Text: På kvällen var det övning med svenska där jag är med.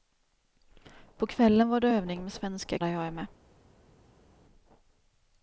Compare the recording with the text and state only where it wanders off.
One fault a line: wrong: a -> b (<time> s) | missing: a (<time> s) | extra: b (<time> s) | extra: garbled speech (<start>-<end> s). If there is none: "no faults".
no faults